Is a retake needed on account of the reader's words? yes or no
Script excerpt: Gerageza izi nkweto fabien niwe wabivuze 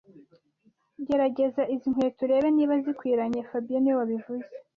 yes